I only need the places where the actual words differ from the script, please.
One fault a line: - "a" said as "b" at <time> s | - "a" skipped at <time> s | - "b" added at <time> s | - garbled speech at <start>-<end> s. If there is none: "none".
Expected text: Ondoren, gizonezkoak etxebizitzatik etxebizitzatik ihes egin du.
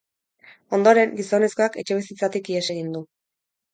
- "etxebizitzatik" skipped at 2.5 s